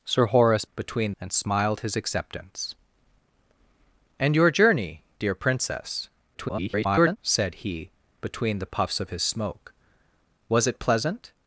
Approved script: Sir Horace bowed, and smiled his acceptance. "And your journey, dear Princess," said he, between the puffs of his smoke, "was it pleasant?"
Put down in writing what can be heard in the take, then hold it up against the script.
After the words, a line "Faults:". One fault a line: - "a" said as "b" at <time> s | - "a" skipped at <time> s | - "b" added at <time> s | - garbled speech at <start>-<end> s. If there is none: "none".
Sir Horace between, and smiled his acceptance. "And your journey, dear Princess," [garbled] said he, between the puffs of his smoke, "was it pleasant?"
Faults:
- "bowed" said as "between" at 0.7 s
- garbled speech at 6.3-7.2 s